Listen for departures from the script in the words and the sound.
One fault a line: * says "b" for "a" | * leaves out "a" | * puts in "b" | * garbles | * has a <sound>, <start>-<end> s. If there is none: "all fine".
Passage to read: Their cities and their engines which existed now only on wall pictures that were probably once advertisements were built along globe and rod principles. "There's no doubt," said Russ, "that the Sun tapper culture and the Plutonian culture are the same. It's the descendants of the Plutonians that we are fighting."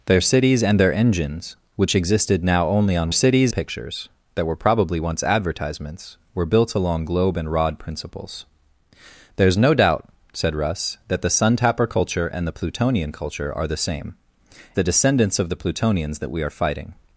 * says "cities" for "wall"
* leaves out "It's"